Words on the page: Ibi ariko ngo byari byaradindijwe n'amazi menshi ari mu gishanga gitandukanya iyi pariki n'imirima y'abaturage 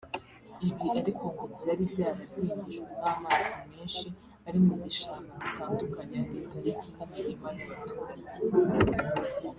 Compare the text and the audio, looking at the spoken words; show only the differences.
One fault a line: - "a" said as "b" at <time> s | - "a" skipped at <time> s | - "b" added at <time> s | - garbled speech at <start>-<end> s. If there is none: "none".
none